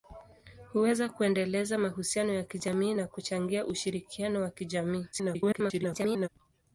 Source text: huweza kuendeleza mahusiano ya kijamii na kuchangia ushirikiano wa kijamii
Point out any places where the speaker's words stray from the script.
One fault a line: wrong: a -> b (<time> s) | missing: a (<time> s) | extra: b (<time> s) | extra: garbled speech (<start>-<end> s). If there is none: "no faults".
extra: garbled speech (5.1-6.3 s)